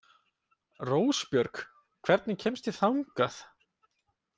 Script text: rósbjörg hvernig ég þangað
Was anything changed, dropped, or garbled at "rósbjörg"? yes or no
no